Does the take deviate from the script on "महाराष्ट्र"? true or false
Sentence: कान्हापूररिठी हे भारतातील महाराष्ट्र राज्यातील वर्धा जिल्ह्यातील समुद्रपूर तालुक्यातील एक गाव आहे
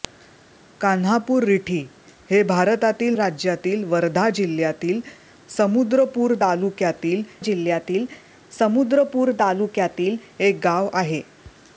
true